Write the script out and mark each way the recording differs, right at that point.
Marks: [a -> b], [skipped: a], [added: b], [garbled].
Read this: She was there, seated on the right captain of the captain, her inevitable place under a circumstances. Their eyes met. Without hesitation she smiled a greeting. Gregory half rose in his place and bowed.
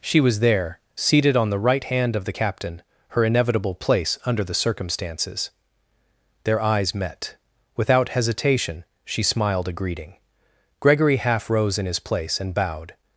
She was there, seated on the right [captain -> hand] of the captain, her inevitable place under [a -> the] circumstances. Their eyes met. Without hesitation she smiled a greeting. Gregory half rose in his place and bowed.